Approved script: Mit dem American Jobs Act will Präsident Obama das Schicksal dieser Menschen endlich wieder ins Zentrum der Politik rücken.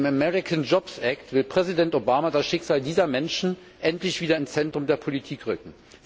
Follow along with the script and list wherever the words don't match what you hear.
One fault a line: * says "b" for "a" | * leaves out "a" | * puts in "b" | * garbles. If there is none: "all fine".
all fine